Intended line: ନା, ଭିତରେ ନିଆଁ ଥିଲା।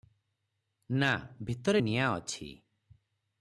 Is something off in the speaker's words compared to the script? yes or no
yes